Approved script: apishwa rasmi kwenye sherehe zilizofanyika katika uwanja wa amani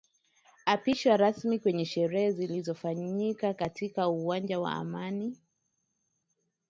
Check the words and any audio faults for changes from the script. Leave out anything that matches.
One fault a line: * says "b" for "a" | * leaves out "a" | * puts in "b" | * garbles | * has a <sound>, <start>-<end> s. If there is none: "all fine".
all fine